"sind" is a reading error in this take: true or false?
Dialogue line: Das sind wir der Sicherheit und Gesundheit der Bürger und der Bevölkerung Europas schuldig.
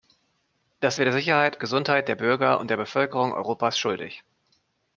true